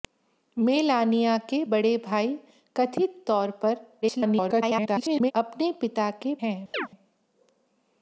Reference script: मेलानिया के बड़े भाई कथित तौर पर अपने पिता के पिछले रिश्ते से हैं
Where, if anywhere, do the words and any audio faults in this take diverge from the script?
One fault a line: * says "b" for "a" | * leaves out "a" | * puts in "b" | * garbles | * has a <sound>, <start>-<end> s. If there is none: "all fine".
* garbles
* leaves out "पिछले रिश्ते से"
* has a chirp, 6.7-6.9 s